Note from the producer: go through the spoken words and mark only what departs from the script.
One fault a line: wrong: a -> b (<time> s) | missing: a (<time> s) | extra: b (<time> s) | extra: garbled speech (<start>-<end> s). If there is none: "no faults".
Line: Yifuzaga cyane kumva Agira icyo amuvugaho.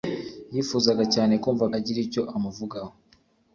no faults